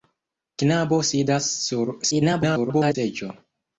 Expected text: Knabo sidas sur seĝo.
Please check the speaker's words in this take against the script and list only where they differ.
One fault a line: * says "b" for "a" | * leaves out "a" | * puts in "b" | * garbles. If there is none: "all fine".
* garbles